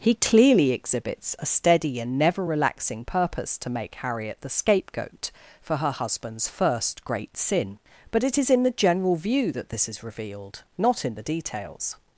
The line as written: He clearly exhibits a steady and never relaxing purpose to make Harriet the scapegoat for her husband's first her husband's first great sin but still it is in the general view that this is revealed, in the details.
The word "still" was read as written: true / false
false